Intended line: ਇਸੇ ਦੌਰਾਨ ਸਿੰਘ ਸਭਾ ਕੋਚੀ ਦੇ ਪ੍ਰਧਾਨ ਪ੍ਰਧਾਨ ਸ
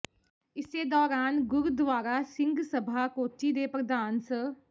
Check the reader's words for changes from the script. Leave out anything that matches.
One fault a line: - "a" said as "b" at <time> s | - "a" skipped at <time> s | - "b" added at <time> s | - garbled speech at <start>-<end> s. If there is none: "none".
- "ਗੁਰਦੁਆਰਾ" added at 1.5 s
- "ਪ੍ਰਧਾਨ" skipped at 4.2 s